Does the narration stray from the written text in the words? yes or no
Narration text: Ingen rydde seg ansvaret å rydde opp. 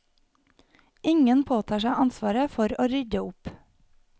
yes